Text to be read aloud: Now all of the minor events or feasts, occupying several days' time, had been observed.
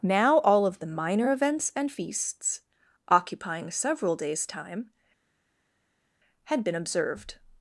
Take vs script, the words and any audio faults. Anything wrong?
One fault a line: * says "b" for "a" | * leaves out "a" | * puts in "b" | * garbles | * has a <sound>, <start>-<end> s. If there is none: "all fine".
* says "and" for "or"